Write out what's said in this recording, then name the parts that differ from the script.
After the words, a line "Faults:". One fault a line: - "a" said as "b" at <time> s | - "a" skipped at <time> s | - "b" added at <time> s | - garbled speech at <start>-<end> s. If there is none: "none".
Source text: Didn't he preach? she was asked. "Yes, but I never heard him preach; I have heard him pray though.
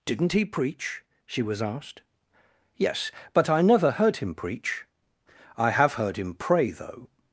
Didn't he preach? she was asked. "Yes, but I never heard him preach; I have heard him pray though.
Faults:
none